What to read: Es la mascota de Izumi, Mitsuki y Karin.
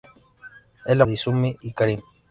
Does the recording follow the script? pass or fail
fail